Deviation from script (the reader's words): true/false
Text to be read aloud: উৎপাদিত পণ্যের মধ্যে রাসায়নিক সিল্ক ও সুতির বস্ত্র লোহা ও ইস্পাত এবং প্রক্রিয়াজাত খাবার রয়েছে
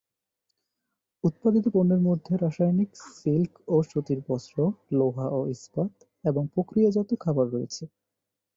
false